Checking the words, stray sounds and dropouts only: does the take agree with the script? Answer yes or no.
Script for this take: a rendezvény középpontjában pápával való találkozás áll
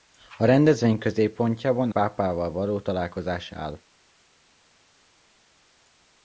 yes